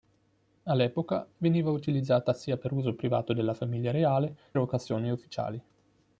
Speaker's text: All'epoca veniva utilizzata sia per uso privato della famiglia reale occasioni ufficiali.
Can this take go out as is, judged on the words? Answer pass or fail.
pass